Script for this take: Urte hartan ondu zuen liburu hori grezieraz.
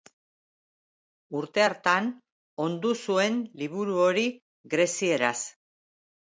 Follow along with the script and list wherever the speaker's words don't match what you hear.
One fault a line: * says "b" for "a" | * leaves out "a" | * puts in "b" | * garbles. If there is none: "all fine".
all fine